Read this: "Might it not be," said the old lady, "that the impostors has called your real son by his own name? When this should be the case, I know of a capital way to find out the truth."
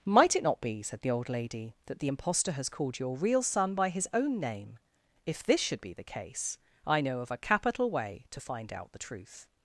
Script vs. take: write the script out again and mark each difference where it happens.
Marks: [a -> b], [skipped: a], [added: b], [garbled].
"Might it not be," said the old lady, "that the [impostors -> impostor] has called your real son by his own name? [When -> If] this should be the case, I know of a capital way to find out the truth."